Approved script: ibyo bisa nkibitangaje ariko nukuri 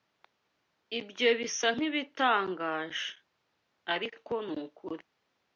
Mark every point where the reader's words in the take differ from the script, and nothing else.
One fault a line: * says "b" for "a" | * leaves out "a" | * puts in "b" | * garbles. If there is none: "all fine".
all fine